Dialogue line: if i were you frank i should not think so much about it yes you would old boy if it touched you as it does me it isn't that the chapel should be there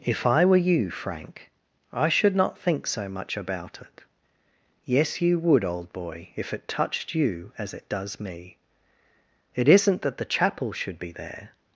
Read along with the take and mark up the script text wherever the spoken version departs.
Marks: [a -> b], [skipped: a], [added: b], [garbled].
if i were you frank i should not think so much about it yes you would old boy if it touched you as it does me it isn't that the chapel should be there